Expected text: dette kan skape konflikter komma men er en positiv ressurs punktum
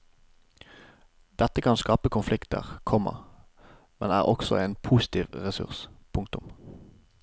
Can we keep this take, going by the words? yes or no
no